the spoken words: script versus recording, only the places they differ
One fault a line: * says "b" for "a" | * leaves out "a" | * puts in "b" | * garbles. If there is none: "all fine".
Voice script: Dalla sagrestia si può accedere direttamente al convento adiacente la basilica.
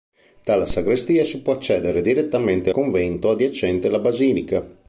* leaves out "al"